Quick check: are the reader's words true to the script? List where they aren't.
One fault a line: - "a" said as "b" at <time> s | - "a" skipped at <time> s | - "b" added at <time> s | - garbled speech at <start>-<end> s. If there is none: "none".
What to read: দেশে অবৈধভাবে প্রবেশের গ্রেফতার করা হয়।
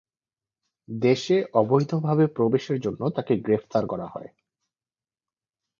- "জন্য তাকে" added at 2.8 s